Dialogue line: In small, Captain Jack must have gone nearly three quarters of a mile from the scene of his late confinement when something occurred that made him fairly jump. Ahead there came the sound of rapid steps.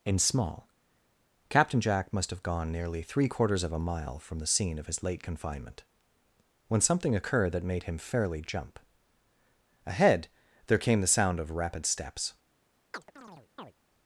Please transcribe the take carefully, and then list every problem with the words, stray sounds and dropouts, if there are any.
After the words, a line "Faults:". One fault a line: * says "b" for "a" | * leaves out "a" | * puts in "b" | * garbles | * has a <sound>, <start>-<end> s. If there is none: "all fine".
In small, Captain Jack must have gone nearly three quarters of a mile from the scene of his late confinement when something occurred that made him fairly jump. Ahead there came the sound of rapid steps.
Faults:
* has a chirp, 12.9-13.7 s